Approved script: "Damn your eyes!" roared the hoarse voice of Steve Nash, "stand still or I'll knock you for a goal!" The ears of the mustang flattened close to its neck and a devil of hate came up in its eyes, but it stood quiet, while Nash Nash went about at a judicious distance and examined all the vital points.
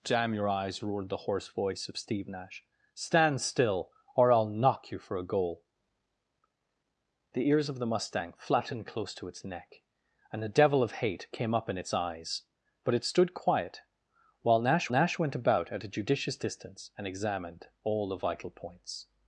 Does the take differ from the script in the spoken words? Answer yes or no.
no